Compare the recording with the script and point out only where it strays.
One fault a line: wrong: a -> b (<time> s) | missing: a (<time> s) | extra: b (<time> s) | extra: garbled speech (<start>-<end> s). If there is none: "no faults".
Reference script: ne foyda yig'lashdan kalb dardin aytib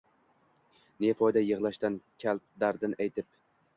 no faults